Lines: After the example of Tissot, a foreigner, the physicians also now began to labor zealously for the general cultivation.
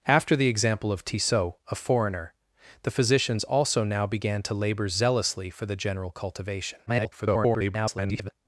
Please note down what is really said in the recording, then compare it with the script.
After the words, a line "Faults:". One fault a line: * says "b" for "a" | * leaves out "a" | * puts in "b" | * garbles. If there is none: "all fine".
After the example of Tissot, a foreigner, the physicians also now began to labor zealously for the general cultivation. [garbled]
Faults:
* garbles